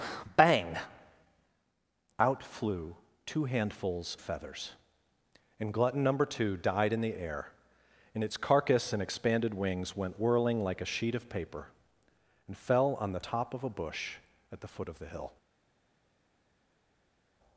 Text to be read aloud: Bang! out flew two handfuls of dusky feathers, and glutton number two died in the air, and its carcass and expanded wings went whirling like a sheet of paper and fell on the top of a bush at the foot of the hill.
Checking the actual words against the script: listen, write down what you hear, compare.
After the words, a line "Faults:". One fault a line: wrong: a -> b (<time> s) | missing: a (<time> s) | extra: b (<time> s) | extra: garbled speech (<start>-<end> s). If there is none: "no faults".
Bang! out flew two handfuls feathers, and glutton number two died in the air, and its carcass and expanded wings went whirling like a sheet of paper and fell on the top of a bush at the foot of the hill.
Faults:
missing: of dusky (4.2 s)